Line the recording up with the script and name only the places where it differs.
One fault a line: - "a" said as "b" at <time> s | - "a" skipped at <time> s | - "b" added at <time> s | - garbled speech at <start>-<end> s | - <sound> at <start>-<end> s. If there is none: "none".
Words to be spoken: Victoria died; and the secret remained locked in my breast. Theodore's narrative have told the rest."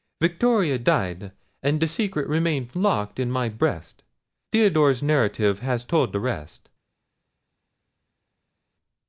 - "have" said as "has" at 5.6 s